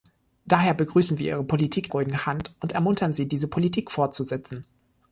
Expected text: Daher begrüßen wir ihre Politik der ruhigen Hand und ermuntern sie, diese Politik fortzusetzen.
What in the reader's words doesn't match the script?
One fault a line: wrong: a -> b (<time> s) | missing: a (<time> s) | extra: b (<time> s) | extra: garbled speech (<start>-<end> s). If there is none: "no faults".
missing: der (1.9 s)